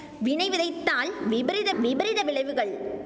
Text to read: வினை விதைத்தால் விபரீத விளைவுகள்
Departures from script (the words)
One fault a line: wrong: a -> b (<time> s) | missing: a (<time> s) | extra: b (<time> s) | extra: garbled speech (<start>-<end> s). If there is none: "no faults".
extra: விபரீத (1.8 s)